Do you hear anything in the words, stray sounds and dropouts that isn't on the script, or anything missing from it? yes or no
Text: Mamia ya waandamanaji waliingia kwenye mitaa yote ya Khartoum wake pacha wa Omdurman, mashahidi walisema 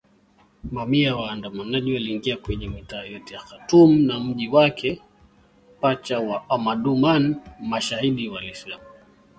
yes